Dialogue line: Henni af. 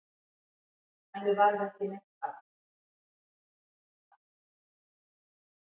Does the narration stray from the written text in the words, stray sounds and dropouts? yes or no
yes